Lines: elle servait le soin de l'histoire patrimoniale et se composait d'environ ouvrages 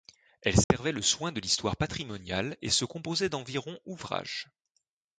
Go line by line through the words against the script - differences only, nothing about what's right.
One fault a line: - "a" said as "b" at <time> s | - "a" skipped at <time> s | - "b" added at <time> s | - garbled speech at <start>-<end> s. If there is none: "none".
none